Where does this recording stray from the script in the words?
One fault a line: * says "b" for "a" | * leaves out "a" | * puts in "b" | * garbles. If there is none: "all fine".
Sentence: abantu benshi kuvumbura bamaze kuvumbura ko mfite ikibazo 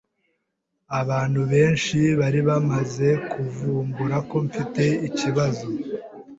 * says "bari" for "kuvumbura"